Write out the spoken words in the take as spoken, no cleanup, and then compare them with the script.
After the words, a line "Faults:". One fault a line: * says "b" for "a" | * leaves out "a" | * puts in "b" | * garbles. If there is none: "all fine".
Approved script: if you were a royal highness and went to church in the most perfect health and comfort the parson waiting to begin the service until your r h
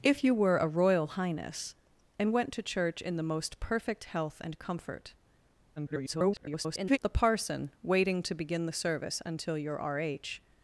if you were a royal highness and went to church in the most perfect health and comfort [garbled] the parson waiting to begin the service until your r h
Faults:
* garbles